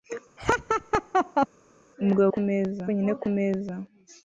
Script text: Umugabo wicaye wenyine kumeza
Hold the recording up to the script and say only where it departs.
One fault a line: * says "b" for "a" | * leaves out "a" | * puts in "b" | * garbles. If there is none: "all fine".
* says "kumeza" for "wicaye"